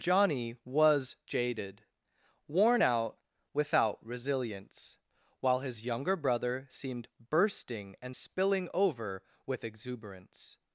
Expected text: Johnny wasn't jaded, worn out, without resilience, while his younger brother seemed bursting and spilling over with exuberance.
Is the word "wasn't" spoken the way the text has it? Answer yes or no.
no